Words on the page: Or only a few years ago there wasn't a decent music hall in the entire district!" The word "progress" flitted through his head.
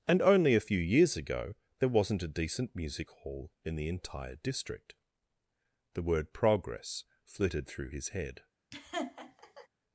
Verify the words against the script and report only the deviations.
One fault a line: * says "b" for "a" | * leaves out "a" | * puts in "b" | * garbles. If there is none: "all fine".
* says "And" for "Or"